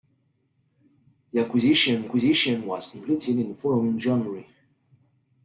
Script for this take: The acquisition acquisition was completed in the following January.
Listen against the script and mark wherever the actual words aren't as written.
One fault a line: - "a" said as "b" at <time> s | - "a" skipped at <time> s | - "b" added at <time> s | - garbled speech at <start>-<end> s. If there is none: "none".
none